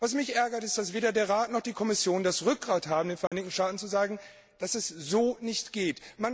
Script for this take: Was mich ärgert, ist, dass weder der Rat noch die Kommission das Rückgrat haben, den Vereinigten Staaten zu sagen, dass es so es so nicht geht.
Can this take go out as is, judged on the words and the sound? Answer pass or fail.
fail